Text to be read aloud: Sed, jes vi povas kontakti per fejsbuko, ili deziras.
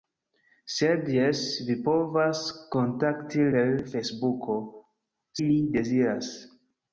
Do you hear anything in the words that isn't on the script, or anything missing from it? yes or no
no